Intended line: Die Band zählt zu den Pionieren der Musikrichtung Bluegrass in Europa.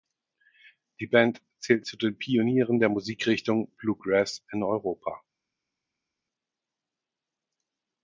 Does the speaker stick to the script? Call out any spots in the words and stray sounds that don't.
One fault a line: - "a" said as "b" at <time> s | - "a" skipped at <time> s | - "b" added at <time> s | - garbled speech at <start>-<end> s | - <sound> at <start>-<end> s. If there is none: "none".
none